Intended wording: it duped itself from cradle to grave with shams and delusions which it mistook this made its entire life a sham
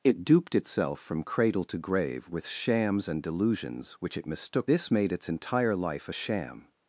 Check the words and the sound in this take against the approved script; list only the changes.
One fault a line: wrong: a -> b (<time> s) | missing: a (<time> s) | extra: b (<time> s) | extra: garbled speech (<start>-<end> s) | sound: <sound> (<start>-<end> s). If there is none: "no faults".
no faults